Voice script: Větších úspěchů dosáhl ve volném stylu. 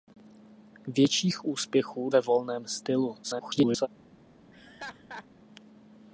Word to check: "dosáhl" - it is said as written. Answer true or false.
false